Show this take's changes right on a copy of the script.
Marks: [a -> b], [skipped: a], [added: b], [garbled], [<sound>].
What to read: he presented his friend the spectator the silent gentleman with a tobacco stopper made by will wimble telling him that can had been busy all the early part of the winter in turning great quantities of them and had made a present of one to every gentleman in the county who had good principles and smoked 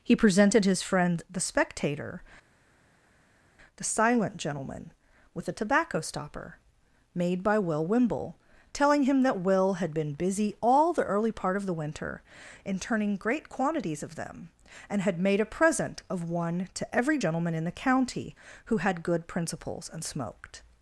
he presented his friend the spectator the silent gentleman with a tobacco stopper made by will wimble telling him that [can -> will] had been busy all the early part of the winter in turning great quantities of them and had made a present of one to every gentleman in the county who had good principles and smoked